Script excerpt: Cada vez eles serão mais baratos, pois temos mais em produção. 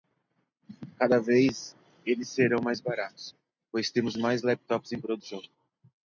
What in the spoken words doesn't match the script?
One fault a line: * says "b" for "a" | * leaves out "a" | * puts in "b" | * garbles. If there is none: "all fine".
* puts in "laptops"